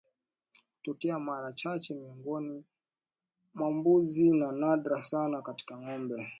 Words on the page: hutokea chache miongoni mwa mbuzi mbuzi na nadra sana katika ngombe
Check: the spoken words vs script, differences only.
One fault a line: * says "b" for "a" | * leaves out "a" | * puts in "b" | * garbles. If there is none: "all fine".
* puts in "mara"
* leaves out "mbuzi"